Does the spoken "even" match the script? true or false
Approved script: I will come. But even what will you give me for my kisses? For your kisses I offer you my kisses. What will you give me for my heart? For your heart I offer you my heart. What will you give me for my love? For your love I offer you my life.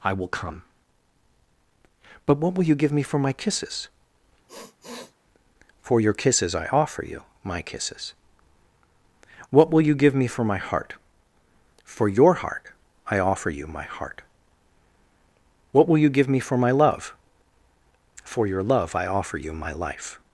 false